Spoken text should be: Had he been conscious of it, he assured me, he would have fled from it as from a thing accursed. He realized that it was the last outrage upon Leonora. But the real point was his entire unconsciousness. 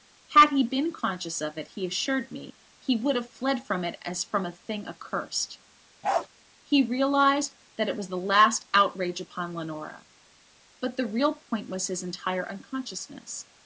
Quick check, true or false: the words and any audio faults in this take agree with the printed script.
false